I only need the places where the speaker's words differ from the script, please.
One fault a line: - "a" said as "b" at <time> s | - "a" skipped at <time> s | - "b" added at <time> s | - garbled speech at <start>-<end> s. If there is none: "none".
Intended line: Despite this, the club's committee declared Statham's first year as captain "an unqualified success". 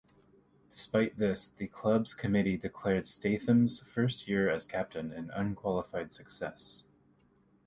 none